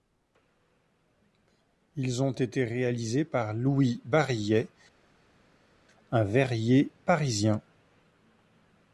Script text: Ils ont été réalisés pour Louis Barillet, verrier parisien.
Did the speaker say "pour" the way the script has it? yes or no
no